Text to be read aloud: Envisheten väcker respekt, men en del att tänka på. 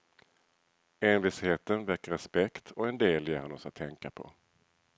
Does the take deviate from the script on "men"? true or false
true